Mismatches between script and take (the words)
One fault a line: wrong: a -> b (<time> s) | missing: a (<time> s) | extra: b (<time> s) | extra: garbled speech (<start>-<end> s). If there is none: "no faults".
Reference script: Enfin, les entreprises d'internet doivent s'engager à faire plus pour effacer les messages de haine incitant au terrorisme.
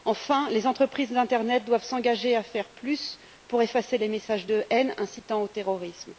no faults